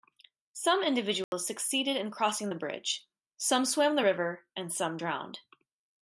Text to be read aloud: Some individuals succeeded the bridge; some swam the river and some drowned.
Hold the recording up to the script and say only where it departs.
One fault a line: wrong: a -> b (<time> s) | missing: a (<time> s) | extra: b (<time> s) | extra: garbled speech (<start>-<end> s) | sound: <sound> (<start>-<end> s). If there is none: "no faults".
sound: dropout (1.2-1.3 s)
extra: in crossing (1.9 s)